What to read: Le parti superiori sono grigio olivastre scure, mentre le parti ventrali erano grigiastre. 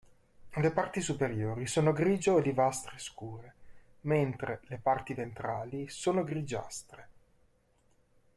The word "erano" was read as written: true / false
false